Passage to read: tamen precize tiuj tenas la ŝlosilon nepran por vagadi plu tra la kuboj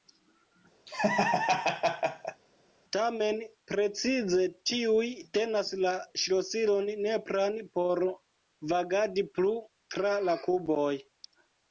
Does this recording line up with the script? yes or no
yes